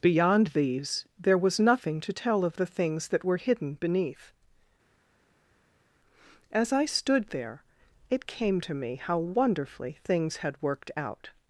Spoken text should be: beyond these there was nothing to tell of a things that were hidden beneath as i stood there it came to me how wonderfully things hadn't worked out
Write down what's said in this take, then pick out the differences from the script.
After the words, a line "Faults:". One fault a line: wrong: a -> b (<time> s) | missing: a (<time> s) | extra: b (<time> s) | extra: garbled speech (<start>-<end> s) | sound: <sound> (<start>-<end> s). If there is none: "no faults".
beyond these there was nothing to tell of the things that were hidden beneath as i stood there it came to me how wonderfully things had worked out
Faults:
wrong: a -> the (2.5 s)
wrong: hadn't -> had (10.4 s)